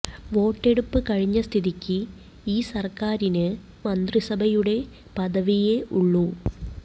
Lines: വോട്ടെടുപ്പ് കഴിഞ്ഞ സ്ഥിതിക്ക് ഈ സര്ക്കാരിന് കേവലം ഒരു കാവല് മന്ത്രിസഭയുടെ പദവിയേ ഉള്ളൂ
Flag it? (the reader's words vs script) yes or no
yes